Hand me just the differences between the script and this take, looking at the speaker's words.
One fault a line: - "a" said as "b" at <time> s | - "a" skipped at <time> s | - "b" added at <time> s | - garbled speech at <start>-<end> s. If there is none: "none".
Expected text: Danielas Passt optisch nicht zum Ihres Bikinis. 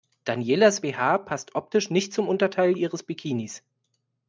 - "BH" added at 0.8 s
- "Unterteil" added at 2.3 s